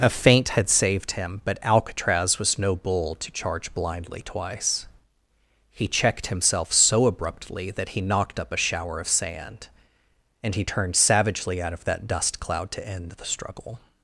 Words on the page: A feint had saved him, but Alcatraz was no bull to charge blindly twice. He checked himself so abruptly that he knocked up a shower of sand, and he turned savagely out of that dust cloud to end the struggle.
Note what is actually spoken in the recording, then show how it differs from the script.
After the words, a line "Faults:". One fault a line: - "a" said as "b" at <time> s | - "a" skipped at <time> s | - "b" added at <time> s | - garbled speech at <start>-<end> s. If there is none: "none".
A feint had saved him, but Alcatraz was no bull to charge blindly twice. He checked himself so abruptly that he knocked up a shower of sand, and he turned savagely out of that dust cloud to end the struggle.
Faults:
none